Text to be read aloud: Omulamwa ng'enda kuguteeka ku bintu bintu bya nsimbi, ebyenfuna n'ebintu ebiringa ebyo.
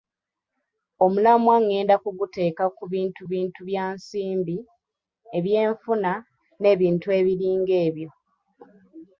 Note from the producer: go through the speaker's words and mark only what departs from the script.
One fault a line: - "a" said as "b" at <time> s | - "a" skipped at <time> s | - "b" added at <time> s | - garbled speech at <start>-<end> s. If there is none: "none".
none